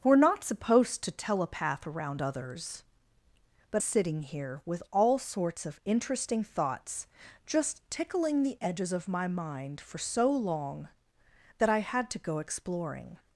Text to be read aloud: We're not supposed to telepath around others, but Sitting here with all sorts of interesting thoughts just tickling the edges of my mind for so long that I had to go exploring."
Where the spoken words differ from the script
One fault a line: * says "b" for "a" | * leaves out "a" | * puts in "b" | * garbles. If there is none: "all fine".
all fine